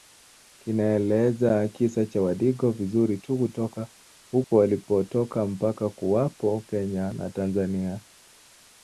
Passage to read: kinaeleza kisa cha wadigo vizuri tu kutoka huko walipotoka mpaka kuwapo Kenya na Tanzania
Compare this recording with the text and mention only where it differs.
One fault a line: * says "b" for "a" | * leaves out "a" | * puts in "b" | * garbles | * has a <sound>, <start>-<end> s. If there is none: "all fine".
* has a dropout, 4.4-4.5 s